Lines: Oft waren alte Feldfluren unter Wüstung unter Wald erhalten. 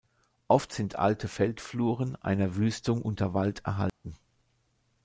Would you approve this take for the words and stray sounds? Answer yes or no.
no